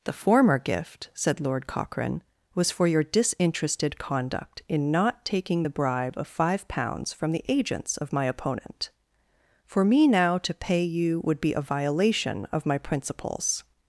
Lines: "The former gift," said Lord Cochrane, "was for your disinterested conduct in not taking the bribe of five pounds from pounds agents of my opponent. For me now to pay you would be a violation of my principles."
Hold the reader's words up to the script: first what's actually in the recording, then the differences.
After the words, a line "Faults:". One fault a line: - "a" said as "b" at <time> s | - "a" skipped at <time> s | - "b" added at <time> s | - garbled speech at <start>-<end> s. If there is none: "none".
"The former gift," said Lord Cochrane, "was for your disinterested conduct in not taking the bribe of five pounds from the agents of my opponent. For me now to pay you would be a violation of my principles."
Faults:
- "pounds" said as "the" at 7.3 s